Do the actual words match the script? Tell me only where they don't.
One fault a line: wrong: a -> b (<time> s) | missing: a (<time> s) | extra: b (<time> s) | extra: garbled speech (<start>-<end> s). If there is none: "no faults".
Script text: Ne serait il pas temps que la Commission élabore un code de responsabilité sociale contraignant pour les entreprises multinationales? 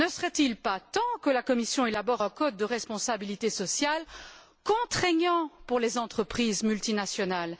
no faults